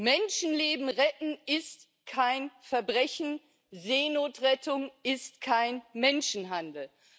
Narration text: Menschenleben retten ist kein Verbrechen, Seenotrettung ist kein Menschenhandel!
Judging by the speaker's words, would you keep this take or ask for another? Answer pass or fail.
pass